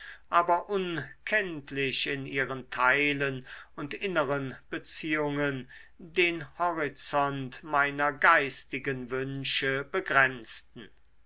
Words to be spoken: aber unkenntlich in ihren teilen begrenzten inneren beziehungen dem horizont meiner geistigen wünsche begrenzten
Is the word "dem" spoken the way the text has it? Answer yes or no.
no